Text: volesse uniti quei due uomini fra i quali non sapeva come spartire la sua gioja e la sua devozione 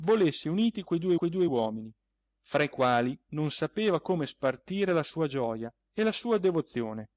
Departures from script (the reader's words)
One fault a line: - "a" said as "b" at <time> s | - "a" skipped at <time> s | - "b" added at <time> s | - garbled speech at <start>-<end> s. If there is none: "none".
- "quei due" added at 1.1 s